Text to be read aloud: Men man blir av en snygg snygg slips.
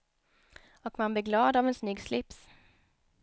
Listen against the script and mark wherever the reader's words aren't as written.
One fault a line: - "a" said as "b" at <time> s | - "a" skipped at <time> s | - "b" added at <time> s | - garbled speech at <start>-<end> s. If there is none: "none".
- "Men" said as "Och" at 0.8 s
- "glad" added at 1.2 s
- "snygg" skipped at 2.0 s